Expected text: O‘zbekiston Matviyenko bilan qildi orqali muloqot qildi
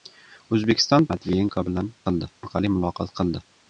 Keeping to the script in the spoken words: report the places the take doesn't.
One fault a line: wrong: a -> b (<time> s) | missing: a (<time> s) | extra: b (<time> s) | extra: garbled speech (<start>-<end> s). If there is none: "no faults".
no faults